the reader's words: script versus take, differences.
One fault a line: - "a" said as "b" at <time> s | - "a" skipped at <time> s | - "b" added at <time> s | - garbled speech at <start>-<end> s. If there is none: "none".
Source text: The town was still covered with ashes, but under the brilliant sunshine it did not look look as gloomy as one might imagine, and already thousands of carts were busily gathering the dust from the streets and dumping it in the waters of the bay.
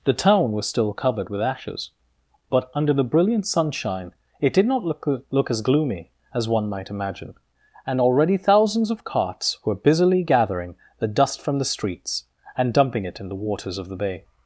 none